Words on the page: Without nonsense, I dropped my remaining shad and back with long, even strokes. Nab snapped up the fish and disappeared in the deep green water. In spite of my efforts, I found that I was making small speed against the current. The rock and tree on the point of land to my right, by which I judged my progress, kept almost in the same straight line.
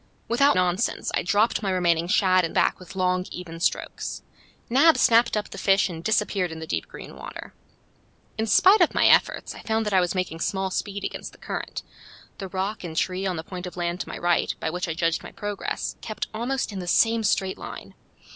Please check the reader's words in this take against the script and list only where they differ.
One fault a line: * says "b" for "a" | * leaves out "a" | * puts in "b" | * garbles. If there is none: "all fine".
all fine